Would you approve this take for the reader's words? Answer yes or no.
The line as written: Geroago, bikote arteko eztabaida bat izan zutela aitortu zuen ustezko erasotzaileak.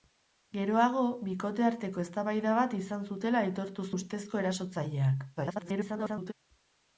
no